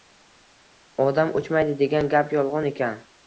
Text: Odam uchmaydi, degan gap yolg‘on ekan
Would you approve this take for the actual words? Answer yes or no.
yes